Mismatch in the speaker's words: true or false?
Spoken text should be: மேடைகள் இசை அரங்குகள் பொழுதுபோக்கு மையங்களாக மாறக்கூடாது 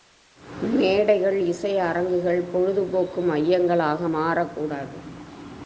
false